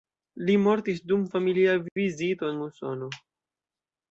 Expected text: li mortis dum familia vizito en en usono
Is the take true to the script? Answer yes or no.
no